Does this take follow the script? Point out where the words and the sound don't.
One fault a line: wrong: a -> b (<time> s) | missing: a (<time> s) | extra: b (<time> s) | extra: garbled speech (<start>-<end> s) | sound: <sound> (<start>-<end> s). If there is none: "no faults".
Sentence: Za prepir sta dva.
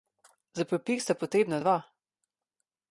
extra: potrebna (1.1 s)